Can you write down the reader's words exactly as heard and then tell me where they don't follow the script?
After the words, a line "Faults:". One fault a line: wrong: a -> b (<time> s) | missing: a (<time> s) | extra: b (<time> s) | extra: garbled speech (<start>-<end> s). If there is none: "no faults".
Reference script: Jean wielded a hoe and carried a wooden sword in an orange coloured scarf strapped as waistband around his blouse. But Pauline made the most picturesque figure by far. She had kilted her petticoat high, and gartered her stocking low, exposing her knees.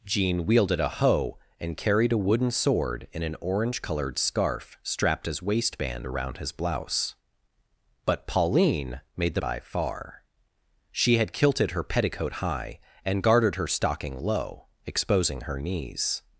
Jean wielded a hoe and carried a wooden sword in an orange coloured scarf strapped as waistband around his blouse. But Pauline made the by far. She had kilted her petticoat high, and gartered her stocking low, exposing her knees.
Faults:
missing: most picturesque figure (9.4 s)